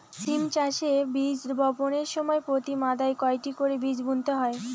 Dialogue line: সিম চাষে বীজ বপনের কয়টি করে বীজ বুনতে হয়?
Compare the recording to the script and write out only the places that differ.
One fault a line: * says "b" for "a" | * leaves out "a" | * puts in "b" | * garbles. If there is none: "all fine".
* puts in "সময় প্রতি মাদায়"